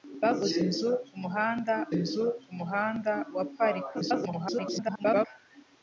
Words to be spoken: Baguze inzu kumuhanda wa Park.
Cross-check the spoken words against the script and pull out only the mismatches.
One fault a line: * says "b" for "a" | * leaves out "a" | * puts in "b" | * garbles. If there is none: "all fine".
* puts in "inzu kumuhanda"
* garbles